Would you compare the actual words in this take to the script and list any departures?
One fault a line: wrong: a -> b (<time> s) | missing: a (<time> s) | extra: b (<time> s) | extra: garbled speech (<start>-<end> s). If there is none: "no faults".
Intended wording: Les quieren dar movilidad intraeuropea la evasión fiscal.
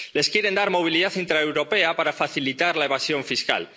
extra: para facilitar (1.9 s)